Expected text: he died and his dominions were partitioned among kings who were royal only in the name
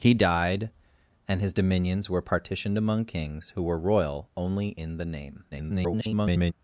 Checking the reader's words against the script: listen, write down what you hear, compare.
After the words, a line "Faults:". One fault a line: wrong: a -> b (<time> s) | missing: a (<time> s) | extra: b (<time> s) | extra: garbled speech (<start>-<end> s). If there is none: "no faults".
he died and his dominions were partitioned among kings who were royal only in the name [garbled]
Faults:
extra: garbled speech (5.5-6.5 s)